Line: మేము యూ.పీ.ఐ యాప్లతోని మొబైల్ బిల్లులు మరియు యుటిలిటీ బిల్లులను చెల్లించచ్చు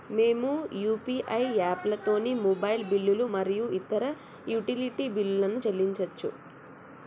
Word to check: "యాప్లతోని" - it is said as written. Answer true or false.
true